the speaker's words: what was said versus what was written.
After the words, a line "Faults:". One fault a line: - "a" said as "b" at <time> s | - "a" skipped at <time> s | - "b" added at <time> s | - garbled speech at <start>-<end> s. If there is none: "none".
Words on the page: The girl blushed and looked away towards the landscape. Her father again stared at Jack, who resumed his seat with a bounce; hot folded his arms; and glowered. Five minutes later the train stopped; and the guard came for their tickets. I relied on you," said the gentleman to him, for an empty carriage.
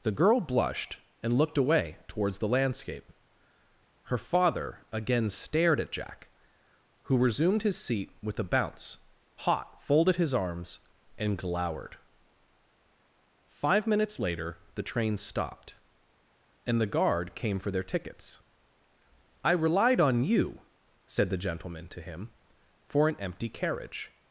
The girl blushed and looked away towards the landscape. Her father again stared at Jack, who resumed his seat with a bounce; hot folded his arms; and glowered. Five minutes later the train stopped; and the guard came for their tickets. I relied on you," said the gentleman to him, for an empty carriage.
Faults:
none